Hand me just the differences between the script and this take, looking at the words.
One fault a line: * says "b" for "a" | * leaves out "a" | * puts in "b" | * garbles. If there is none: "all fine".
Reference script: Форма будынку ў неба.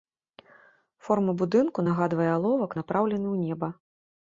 * puts in "нагадвае аловак напраўлены"